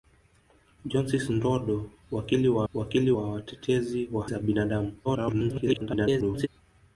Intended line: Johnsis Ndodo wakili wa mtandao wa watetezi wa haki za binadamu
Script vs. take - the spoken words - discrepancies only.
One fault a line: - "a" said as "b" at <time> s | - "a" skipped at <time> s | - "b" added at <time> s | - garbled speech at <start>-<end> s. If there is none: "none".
- "mtandao" said as "wakili" at 2.7 s
- "haki" skipped at 4.3 s
- garbled speech at 5.0-6.5 s